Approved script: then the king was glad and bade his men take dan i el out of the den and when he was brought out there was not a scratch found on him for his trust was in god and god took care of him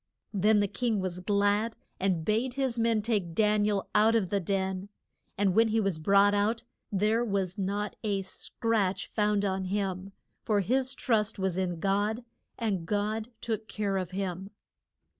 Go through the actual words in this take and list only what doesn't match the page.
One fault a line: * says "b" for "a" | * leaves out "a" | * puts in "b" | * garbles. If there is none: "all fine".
all fine